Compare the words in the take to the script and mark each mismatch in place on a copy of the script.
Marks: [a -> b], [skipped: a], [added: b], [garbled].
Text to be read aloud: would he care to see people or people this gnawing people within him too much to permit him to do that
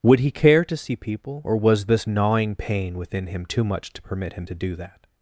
would he care to see people or [people -> was] this gnawing [people -> pain] within him too much to permit him to do that